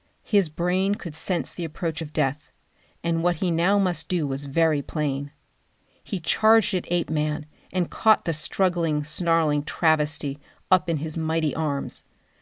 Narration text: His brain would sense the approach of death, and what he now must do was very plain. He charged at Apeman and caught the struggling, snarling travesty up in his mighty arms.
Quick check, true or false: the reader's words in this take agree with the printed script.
false